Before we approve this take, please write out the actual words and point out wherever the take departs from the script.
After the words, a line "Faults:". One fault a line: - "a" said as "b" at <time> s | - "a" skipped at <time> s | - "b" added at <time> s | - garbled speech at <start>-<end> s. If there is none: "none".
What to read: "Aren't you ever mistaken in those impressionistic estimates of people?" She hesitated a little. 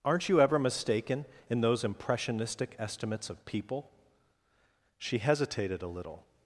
"Aren't you ever mistaken in those impressionistic estimates of people?" She hesitated a little.
Faults:
none